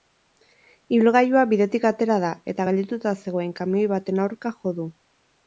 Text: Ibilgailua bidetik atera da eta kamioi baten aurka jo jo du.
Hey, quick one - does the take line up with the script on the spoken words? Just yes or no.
no